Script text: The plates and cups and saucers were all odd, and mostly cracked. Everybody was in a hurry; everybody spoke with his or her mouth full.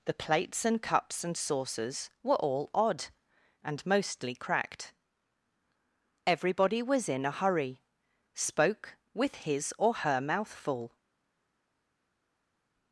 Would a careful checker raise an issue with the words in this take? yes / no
yes